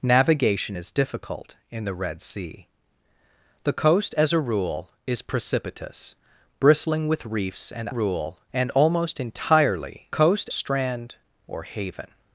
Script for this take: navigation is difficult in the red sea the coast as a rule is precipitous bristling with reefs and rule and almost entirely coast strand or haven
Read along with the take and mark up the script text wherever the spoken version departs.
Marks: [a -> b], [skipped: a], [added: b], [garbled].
navigation is difficult in the red sea the coast as a rule is precipitous bristling with reefs and rule and almost entirely coast strand or haven